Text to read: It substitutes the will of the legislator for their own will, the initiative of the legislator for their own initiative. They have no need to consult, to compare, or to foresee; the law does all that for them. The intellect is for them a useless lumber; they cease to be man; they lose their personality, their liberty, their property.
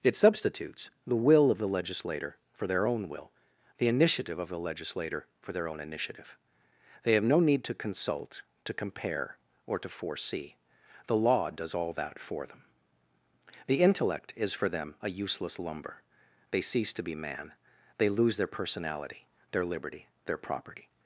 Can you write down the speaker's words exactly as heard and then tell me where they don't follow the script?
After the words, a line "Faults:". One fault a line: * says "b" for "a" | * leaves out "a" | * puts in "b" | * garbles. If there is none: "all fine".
It substitutes the will of the legislator for their own will, the initiative of the legislator for their own initiative. They have no need to consult, to compare, or to foresee; the law does all that for them. The intellect is for them a useless lumber; they cease to be man; they lose their personality, their liberty, their property.
Faults:
all fine